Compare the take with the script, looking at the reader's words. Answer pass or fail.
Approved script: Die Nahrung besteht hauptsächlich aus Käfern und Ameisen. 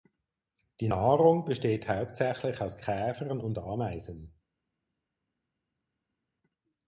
pass